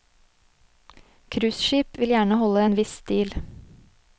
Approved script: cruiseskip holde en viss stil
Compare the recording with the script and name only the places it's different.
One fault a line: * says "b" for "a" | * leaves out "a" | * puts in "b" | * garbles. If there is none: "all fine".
* puts in "vil gjerne"